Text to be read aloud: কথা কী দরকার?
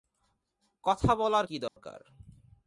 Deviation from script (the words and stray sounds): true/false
true